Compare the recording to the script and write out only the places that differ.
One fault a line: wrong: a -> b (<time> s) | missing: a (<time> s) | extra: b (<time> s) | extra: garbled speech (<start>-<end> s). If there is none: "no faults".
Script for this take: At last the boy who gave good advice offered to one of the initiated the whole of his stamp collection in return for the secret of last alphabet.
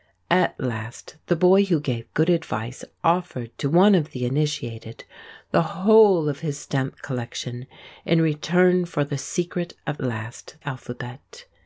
no faults